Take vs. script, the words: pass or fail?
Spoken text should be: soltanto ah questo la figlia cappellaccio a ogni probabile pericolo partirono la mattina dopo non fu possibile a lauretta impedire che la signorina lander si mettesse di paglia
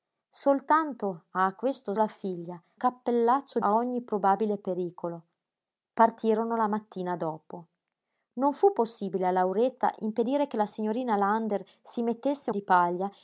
pass